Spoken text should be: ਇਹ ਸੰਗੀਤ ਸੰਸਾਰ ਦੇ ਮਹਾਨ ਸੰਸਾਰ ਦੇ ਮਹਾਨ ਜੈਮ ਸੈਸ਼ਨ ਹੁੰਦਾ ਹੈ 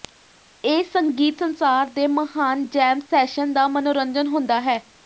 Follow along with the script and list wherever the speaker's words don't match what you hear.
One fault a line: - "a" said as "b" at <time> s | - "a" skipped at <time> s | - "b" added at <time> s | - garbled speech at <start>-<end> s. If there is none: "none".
- "ਸੰਸਾਰ ਦੇ ਮਹਾਨ ਜੈਮ ਸੈਸ਼ਨ" said as "ਜੈਮ ਸੈਸ਼ਨ ਦਾ ਮਨੋਰੰਜਨ" at 2.7 s